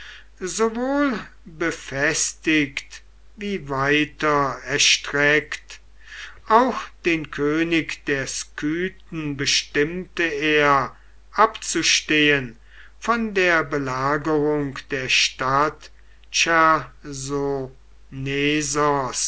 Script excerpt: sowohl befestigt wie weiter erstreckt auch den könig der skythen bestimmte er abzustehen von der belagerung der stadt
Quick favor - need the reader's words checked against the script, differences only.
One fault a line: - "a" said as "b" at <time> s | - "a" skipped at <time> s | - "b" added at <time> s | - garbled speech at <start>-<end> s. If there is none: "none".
none